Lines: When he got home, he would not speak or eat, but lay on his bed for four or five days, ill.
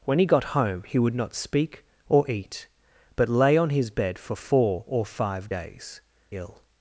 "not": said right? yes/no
yes